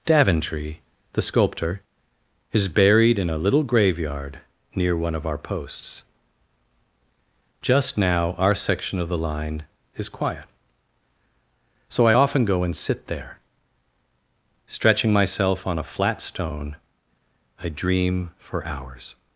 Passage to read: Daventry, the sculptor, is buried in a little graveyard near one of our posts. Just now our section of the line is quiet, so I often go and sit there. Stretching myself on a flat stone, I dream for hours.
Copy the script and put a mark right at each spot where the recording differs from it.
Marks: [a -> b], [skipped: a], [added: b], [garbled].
Daventry, the sculptor, is buried in a little graveyard near one of our posts. Just now our section of the line is quiet, so I often go and sit there. Stretching myself on a flat stone, I dream for hours.